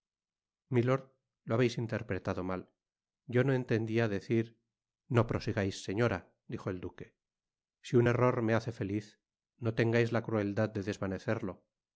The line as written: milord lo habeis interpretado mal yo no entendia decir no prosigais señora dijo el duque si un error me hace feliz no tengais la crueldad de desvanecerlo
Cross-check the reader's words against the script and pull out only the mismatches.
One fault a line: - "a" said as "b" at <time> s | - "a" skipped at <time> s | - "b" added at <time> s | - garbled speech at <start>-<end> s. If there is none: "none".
none